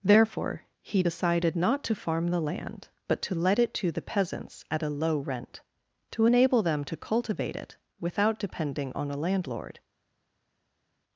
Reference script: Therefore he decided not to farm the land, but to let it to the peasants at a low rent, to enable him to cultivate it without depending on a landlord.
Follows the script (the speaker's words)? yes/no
no